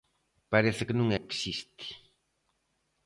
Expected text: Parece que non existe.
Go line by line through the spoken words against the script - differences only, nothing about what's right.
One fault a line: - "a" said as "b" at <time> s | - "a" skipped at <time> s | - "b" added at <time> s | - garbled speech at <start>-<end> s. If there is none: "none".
none